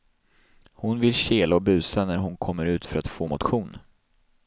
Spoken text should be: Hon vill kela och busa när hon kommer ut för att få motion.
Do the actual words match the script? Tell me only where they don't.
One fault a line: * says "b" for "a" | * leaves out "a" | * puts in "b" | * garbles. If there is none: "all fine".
all fine